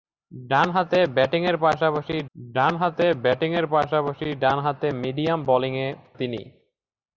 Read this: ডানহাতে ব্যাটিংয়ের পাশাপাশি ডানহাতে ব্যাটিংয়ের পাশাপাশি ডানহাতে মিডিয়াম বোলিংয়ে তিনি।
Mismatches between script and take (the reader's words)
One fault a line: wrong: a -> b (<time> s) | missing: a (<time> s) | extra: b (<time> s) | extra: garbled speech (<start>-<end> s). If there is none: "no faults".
no faults